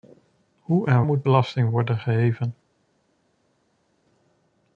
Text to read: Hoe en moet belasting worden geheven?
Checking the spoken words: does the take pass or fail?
pass